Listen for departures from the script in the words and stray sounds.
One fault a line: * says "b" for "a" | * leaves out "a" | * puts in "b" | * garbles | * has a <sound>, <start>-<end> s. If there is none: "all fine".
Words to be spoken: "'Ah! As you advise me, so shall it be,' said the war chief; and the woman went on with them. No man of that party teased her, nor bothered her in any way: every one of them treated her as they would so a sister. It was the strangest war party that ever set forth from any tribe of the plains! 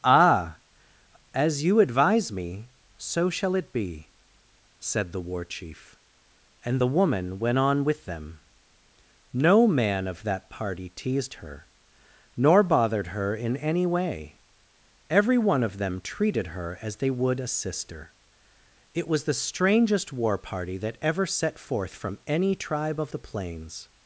* leaves out "so"